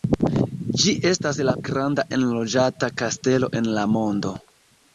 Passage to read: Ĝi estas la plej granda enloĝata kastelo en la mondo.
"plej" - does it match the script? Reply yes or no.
no